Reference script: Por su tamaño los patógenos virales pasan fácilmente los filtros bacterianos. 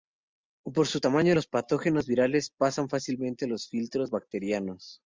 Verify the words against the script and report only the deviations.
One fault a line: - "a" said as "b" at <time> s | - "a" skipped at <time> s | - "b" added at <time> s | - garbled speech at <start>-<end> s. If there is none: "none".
none